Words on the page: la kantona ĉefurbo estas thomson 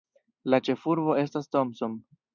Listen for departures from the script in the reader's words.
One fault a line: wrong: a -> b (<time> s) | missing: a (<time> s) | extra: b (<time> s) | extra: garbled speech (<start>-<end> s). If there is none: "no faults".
missing: kantona (0.6 s)